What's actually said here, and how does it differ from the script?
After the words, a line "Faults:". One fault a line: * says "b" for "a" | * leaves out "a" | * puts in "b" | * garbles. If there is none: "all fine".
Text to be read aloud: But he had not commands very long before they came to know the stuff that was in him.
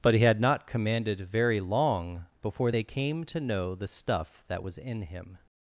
But he had not commanded very long before they came to know the stuff that was in him.
Faults:
* says "commanded" for "commands"